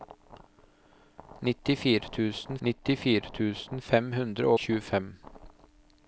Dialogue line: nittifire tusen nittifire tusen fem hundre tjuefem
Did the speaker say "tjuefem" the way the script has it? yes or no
yes